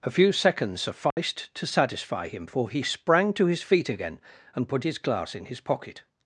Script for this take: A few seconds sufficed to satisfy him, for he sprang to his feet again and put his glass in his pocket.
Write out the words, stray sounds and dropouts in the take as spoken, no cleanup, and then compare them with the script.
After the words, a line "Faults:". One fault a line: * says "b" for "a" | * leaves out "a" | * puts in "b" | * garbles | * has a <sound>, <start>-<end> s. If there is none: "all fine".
A few seconds sufficed to satisfy him, for he sprang to his feet again and put his glass in his pocket.
Faults:
* has a dropout, 1.1-1.2 s